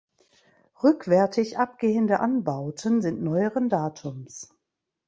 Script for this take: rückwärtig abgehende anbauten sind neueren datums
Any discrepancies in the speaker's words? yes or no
no